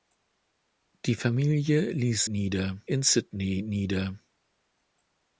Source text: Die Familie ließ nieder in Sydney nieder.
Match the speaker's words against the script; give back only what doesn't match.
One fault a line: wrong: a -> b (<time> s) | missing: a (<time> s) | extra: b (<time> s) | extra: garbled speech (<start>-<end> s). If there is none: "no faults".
no faults